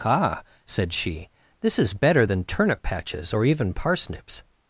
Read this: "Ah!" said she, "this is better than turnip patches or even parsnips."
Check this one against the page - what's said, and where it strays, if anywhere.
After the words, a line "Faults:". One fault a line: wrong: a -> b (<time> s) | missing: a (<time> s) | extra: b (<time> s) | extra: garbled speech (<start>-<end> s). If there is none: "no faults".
"Ah!" said she, "this is better than turnip patches or even parsnips."
Faults:
no faults